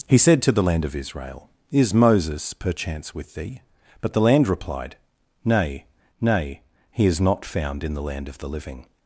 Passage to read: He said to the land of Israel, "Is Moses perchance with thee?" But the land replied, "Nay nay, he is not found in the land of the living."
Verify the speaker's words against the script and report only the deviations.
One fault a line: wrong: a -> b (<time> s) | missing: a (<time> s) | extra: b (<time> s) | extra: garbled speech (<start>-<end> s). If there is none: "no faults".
no faults